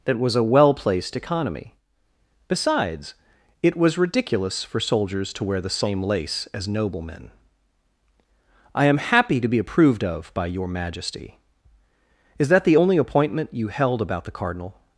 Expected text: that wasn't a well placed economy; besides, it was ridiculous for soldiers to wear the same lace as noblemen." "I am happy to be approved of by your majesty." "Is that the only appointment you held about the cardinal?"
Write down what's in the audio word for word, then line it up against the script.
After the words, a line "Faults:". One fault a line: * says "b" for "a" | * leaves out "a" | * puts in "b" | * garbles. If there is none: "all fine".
that was a well placed economy; besides, it was ridiculous for soldiers to wear the same lace as noblemen." "I am happy to be approved of by your majesty." "Is that the only appointment you held about the cardinal?"
Faults:
* says "was" for "wasn't"